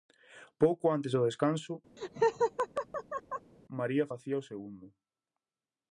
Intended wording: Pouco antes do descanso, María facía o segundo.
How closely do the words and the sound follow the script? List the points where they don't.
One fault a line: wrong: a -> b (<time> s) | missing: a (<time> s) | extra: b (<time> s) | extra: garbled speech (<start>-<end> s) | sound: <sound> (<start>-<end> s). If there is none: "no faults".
sound: laugh (2.0-3.5 s)